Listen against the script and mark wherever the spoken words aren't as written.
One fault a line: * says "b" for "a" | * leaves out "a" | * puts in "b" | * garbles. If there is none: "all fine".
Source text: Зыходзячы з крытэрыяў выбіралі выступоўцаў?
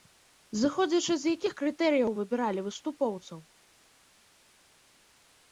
* puts in "якіх"